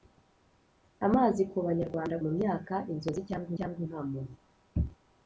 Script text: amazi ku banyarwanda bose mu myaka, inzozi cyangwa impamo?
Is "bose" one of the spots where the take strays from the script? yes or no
yes